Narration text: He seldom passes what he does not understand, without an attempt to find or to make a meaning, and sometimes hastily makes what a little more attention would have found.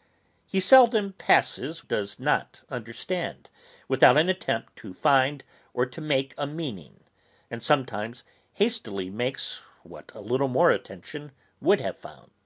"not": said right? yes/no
yes